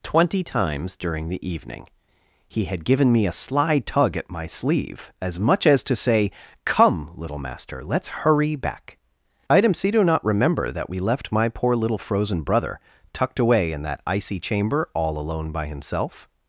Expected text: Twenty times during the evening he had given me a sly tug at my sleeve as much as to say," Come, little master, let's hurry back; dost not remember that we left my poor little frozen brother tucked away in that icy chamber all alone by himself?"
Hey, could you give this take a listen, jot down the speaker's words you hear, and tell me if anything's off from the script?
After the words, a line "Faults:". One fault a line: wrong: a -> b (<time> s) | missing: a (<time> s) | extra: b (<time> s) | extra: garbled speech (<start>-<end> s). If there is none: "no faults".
Twenty times during the evening he had given me a sly tug at my sleeve as much as to say," Come, little master, let's hurry back; item c do not remember that we left my poor little frozen brother tucked away in that icy chamber all alone by himself?"
Faults:
wrong: dost -> item c do (9.5 s)